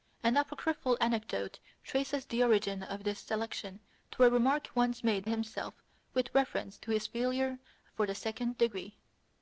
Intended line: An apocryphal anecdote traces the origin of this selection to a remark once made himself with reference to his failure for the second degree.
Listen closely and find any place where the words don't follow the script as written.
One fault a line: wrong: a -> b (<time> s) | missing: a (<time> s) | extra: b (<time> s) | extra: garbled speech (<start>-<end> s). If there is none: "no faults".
no faults